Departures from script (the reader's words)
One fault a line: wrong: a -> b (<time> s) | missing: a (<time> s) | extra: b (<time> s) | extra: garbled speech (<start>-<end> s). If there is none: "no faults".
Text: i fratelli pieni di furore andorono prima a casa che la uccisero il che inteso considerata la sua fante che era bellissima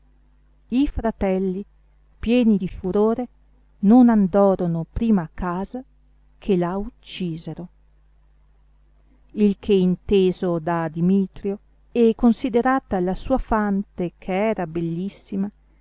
extra: non (3.8 s)
extra: da dimitrio e (10.6 s)